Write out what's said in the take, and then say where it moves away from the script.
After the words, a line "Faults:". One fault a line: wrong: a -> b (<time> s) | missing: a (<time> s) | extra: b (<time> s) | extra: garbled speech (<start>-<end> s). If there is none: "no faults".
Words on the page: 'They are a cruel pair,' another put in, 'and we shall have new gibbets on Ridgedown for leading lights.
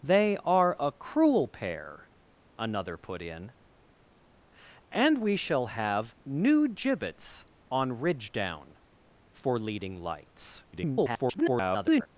'They are a cruel pair,' another put in, 'and we shall have new gibbets on Ridgedown for leading lights. [garbled]
Faults:
extra: garbled speech (10.7-12.1 s)